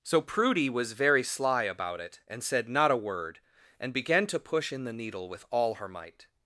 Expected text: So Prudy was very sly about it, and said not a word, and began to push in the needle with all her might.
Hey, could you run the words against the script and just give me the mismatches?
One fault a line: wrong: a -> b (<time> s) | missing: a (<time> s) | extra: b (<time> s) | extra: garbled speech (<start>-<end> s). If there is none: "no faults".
no faults